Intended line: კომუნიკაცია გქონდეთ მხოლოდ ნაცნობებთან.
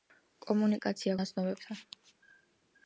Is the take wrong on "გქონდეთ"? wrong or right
wrong